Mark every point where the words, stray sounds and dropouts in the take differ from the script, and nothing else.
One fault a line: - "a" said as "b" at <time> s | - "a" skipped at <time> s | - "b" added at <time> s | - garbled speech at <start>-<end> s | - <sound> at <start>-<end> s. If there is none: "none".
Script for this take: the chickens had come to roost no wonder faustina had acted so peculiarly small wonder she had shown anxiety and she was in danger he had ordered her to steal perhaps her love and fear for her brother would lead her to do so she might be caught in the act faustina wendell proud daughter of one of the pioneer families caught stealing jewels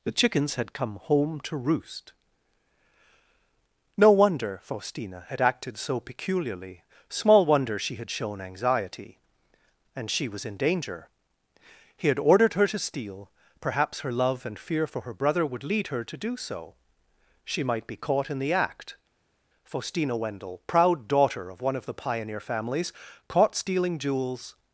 - "home" added at 1.0 s